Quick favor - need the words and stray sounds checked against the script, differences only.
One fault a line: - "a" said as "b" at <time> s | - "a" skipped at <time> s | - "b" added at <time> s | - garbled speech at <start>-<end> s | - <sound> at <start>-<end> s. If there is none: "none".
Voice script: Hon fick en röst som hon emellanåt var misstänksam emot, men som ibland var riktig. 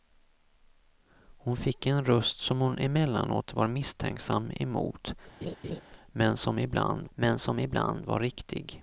- laugh at 5.4-5.8 s
- "men som ibland" added at 7.1 s